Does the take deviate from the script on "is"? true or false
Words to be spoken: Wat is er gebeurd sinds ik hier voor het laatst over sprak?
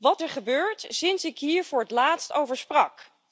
true